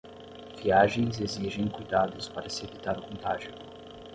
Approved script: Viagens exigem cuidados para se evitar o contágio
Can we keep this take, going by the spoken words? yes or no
yes